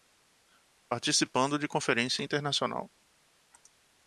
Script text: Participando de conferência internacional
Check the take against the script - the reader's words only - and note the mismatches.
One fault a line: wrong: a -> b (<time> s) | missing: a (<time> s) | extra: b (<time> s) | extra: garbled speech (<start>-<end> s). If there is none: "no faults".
no faults